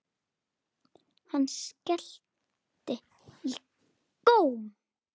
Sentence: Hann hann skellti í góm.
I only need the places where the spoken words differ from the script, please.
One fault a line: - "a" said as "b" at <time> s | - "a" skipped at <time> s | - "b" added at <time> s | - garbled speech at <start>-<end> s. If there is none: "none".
- "hann" skipped at 1.4 s